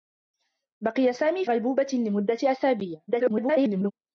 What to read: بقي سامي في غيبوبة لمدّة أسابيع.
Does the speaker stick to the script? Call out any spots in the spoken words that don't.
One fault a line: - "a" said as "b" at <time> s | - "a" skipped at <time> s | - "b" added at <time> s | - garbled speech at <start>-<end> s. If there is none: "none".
- "في" skipped at 1.4 s
- garbled speech at 3.1-3.9 s